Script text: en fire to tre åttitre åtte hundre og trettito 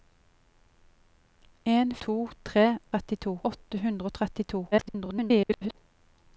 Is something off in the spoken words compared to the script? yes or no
yes